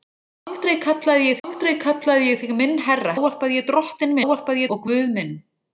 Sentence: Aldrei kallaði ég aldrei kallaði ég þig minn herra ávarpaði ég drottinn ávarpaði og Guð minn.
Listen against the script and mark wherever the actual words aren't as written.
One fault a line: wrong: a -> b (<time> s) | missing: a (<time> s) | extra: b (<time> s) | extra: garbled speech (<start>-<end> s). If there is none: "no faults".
no faults